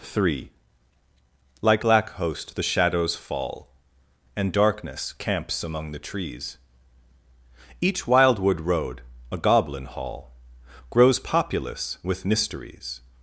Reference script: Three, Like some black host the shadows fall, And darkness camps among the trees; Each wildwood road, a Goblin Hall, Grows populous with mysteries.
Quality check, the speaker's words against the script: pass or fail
fail